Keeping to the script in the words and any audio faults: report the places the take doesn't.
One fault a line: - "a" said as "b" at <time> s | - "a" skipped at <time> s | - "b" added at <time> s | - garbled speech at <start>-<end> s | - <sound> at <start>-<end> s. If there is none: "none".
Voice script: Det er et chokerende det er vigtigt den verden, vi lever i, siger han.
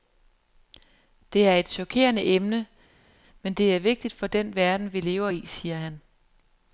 - "emne men" added at 2.2 s
- "for" added at 4.1 s